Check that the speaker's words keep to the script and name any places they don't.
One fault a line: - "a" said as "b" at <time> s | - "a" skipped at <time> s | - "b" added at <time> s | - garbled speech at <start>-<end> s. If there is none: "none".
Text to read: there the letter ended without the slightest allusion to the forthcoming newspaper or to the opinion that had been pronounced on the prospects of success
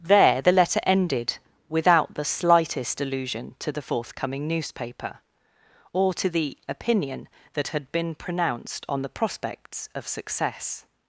none